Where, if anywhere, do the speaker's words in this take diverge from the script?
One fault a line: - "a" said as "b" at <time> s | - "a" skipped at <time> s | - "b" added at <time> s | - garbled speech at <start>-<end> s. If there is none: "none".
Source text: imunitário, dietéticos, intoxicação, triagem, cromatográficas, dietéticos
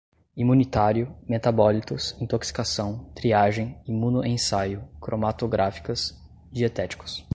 - "dietéticos" said as "metabólitos" at 1.3 s
- "imunoensaio" added at 3.9 s